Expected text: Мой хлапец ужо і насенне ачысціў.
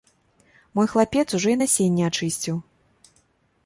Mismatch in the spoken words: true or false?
false